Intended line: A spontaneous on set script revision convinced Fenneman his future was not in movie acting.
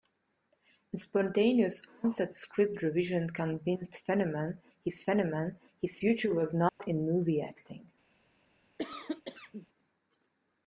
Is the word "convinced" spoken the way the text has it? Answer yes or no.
yes